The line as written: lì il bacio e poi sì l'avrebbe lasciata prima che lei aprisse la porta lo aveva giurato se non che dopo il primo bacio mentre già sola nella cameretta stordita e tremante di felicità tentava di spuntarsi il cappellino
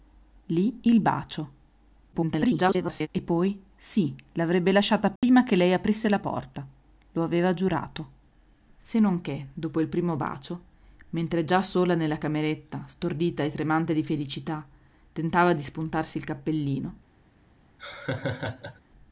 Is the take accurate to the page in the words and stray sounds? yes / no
no